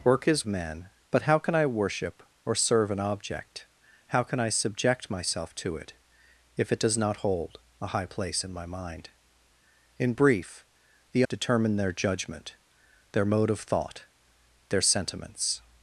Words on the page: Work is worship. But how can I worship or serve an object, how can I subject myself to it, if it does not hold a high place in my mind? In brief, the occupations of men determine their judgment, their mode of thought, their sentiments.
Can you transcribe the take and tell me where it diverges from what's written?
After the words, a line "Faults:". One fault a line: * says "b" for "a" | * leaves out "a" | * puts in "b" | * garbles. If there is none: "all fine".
Work is men. But how can I worship or serve an object, how can I subject myself to it, if it does not hold a high place in my mind? In brief, the determine their judgment, their mode of thought, their sentiments.
Faults:
* says "men" for "worship"
* leaves out "occupations of men"